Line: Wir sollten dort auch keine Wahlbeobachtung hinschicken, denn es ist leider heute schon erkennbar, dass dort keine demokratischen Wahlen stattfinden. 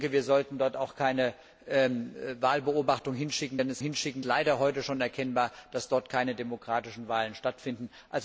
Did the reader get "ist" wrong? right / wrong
wrong